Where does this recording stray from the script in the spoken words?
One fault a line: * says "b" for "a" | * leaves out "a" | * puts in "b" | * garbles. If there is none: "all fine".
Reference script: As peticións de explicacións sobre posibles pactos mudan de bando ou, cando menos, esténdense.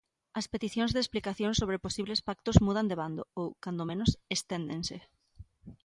all fine